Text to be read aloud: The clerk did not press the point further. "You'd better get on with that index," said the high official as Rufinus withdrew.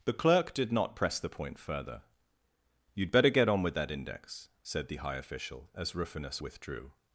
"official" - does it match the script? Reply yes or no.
yes